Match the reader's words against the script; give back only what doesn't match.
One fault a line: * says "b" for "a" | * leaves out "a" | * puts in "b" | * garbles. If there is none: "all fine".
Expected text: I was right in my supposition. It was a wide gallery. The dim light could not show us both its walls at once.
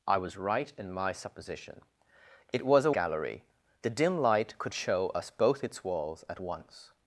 * leaves out "wide"
* leaves out "not"